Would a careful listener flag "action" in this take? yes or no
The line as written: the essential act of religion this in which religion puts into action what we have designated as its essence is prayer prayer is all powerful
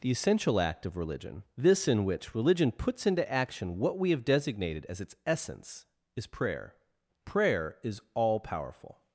no